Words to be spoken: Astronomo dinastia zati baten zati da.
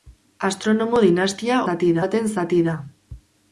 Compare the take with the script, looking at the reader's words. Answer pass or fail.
pass